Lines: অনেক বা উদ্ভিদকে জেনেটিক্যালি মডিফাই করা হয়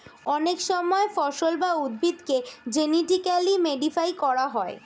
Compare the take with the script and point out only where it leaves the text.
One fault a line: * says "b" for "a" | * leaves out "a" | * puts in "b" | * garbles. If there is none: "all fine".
* puts in "সময় ফসল"